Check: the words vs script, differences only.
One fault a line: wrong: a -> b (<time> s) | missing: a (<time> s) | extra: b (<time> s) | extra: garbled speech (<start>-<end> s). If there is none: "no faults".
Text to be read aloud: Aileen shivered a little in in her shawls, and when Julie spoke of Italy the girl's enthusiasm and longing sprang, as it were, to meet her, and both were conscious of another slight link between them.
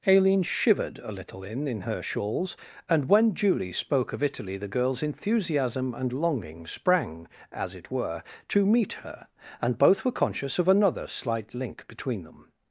no faults